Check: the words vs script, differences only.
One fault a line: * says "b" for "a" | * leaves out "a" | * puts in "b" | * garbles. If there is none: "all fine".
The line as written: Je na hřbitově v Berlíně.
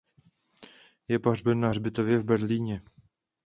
* puts in "pohřben"